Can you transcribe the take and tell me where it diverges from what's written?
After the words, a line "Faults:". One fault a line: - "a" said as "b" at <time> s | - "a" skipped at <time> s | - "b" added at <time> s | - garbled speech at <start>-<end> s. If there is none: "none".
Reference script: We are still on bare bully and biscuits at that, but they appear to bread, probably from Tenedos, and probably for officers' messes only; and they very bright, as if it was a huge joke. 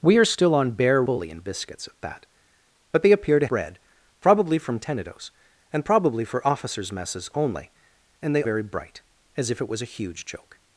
We are still on bare bully and biscuits at that, but they appear to bread, probably from Tenedos, and probably for officers' messes only; and they very bright, as if it was a huge joke.
Faults:
none